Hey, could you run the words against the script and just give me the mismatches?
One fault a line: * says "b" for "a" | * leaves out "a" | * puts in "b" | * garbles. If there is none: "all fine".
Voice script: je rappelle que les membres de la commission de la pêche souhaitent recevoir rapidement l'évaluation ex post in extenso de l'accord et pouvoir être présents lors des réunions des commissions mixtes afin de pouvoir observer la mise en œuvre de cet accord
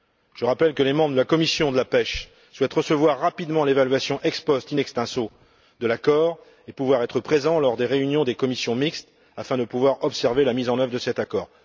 all fine